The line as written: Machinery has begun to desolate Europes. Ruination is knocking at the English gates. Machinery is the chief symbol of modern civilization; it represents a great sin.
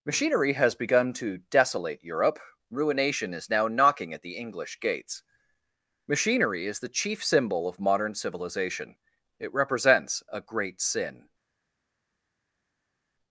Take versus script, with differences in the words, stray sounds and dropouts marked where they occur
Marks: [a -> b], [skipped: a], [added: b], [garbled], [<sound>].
Machinery has begun to desolate [Europes. -> Europe] Ruination is [added: now] knocking at the English gates. Machinery is the chief symbol of modern civilization; it represents a great sin.